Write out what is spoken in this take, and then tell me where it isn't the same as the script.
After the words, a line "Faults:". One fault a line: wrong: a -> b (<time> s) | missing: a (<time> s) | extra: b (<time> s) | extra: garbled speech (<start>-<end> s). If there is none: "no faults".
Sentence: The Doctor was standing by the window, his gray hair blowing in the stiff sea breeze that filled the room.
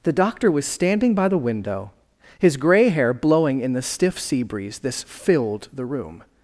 The Doctor was standing by the window, his gray hair blowing in the stiff sea breeze this filled the room.
Faults:
wrong: that -> this (4.8 s)